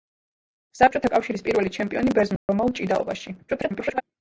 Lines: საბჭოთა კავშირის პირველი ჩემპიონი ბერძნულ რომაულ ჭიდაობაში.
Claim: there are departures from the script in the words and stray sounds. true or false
true